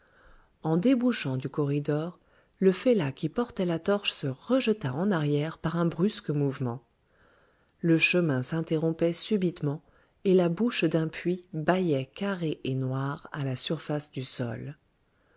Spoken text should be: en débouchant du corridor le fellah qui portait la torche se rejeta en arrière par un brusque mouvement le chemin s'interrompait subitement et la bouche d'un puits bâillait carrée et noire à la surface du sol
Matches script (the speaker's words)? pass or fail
pass